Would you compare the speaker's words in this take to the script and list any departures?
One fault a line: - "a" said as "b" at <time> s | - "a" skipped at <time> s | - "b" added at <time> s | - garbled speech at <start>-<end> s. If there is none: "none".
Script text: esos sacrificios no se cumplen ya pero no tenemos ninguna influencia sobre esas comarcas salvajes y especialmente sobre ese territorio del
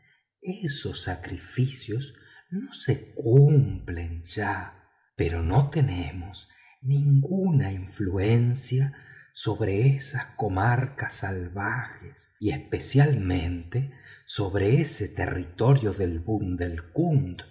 none